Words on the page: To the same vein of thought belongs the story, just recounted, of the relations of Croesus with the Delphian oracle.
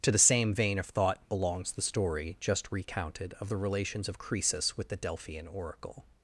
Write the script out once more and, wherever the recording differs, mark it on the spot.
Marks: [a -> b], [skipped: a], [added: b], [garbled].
To the same vein of thought belongs the story, just recounted, of the relations of Croesus with the Delphian oracle.